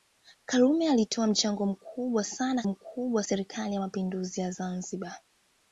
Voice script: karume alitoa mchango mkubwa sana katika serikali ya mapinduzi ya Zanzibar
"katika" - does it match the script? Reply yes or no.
no